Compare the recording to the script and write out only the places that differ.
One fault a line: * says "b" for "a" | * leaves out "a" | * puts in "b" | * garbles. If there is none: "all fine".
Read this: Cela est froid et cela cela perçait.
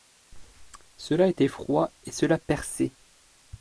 * says "était" for "est"
* leaves out "cela"